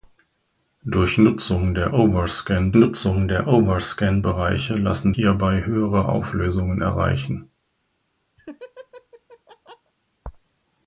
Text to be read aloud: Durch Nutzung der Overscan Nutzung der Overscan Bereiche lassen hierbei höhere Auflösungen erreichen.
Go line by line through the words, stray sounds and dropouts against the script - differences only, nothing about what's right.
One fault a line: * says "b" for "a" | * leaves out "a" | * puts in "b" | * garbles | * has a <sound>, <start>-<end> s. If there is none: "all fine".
* has a laugh, 8.4-9.9 s